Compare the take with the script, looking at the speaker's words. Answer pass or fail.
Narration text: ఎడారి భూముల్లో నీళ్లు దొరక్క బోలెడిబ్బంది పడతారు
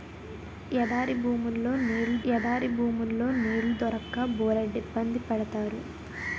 fail